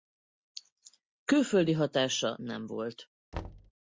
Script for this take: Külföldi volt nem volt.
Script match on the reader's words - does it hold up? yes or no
no